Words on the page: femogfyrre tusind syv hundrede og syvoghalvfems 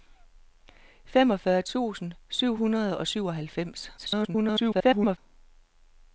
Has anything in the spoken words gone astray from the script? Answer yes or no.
yes